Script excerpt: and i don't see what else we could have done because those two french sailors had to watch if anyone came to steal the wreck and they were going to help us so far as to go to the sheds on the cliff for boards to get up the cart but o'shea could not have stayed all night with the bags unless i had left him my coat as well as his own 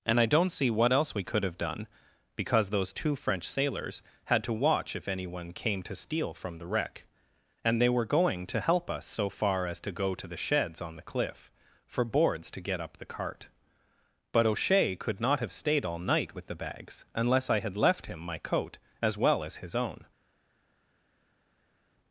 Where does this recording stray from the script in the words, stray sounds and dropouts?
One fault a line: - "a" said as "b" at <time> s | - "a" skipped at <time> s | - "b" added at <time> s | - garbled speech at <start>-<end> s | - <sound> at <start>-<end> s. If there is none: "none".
- "from" added at 6.3 s